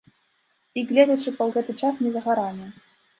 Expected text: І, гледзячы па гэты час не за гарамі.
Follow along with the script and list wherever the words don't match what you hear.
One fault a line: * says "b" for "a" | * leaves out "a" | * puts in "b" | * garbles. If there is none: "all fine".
all fine